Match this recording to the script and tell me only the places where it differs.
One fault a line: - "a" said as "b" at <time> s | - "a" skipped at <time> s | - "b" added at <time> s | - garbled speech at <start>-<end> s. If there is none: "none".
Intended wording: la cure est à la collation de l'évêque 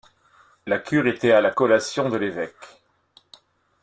- "est" said as "était" at 1.1 s